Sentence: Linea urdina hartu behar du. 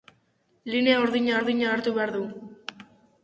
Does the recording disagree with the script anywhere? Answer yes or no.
yes